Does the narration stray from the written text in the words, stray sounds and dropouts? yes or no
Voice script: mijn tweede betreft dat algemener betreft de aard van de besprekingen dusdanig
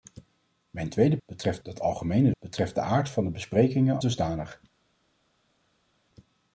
no